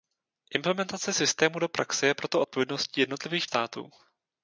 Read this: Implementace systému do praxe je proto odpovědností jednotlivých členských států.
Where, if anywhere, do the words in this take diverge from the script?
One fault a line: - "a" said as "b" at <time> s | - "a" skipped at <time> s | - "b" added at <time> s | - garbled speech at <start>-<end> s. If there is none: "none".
- "členských" skipped at 3.5 s